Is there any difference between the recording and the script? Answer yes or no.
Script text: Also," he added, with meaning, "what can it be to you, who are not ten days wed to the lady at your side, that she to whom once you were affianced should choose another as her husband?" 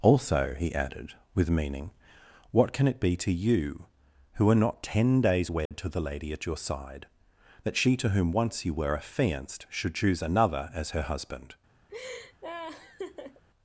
no